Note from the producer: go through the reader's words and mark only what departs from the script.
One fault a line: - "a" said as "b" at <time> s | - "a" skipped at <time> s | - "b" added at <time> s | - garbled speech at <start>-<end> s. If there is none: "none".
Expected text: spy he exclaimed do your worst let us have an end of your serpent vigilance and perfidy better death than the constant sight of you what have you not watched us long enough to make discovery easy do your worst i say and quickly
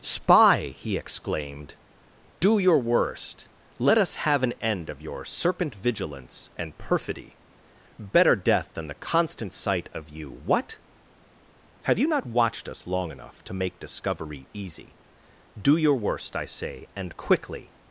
none